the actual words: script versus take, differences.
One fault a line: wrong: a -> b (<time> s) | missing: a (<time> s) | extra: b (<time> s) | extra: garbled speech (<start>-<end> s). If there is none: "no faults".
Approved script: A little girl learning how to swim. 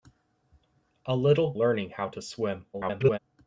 missing: girl (1.5 s)
extra: garbled speech (2.7-3.2 s)